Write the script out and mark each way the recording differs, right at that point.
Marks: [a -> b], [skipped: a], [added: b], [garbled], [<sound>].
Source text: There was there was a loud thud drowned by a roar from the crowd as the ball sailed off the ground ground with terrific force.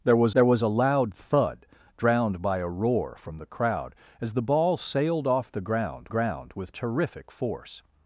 There was there was a loud thud drowned by a roar from the crowd as the ball sailed off the ground ground with terrific force.